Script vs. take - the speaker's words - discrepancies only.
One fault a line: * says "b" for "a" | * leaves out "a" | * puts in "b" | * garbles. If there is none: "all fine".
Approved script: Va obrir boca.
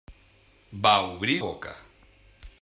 all fine